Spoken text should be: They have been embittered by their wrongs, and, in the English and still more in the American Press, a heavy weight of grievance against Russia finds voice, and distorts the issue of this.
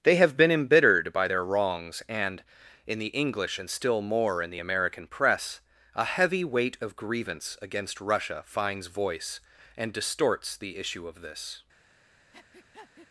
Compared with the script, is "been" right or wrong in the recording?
right